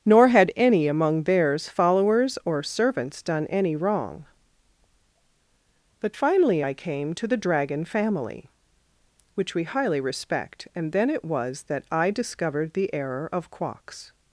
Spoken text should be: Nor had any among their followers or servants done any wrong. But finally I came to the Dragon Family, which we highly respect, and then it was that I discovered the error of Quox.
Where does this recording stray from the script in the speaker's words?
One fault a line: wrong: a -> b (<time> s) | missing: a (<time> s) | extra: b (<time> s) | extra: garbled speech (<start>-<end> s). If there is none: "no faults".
wrong: their -> theirs (1.2 s)